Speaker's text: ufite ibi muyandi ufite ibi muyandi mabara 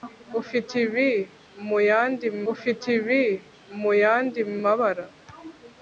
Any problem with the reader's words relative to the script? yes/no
no